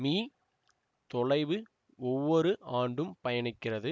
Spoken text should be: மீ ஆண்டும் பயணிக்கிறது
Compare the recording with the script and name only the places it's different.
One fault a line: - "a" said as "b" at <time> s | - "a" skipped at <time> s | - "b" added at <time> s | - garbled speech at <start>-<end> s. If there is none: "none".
- "தொலைவு ஒவ்வொரு" added at 1.1 s